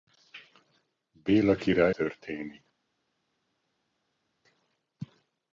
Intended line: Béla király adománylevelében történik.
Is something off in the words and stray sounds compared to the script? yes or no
yes